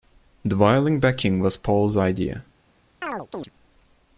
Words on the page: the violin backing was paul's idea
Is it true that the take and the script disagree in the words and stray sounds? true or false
true